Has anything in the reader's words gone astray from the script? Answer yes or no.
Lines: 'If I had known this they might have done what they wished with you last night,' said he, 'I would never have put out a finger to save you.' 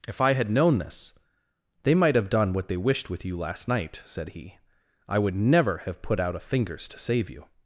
yes